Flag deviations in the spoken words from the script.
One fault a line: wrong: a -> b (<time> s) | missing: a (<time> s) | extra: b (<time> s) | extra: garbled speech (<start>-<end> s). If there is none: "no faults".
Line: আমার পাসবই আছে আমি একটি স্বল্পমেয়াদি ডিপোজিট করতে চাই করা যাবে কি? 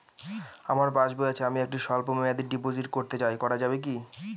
no faults